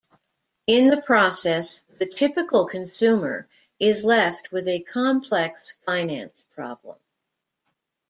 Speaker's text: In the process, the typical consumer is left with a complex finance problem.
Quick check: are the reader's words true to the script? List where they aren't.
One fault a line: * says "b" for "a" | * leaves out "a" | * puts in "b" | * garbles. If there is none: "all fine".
all fine